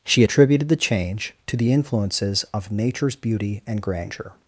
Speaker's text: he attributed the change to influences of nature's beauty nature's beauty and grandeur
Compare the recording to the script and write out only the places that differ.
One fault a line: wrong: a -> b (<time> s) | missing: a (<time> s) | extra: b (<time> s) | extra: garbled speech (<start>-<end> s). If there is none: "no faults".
wrong: he -> she (0.0 s)
extra: the (1.6 s)
missing: nature's beauty (3.6 s)